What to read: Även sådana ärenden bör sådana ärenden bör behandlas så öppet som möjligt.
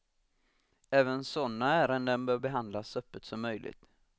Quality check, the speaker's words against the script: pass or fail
fail